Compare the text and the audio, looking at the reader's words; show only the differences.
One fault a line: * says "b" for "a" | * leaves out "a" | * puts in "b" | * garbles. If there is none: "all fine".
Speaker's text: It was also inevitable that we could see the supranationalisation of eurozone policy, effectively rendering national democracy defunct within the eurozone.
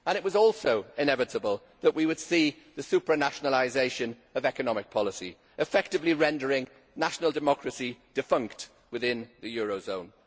* says "would" for "could"
* says "economic" for "eurozone"